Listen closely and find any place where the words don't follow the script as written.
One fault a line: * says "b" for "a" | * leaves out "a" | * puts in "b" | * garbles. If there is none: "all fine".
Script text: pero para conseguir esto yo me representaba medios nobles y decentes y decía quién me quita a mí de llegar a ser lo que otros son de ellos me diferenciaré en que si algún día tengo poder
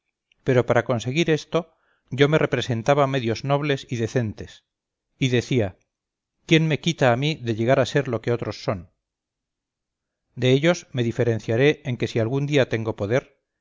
all fine